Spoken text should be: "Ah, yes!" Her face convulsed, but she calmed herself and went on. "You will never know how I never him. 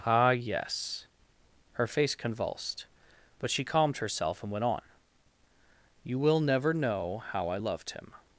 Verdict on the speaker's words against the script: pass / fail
fail